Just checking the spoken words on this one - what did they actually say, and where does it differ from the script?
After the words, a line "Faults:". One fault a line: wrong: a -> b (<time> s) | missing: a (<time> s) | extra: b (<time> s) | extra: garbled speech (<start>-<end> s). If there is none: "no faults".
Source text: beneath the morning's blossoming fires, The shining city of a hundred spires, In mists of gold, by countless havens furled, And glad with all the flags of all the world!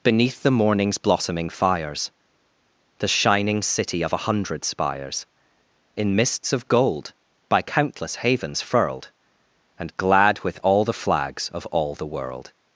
beneath the morning's blossoming fires, The shining city of a hundred spires, In mists of gold, by countless havens furled, And glad with all the flags of all the world!
Faults:
no faults